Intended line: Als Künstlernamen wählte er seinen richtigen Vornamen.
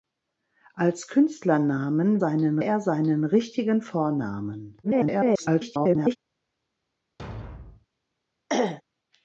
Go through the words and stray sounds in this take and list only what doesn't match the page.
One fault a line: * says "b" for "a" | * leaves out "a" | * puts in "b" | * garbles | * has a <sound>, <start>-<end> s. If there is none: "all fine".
* says "seinen" for "wählte"
* garbles
* has a thud, 7.2-7.9 s
* has a throat clearing, 8.5-8.8 s